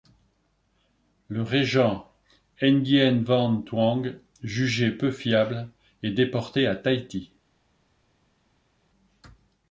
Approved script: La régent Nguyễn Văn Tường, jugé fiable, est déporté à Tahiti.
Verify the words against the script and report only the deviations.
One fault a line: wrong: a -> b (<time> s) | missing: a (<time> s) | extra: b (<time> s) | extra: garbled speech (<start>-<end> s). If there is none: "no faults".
wrong: La -> Le (1.3 s)
extra: peu (4.9 s)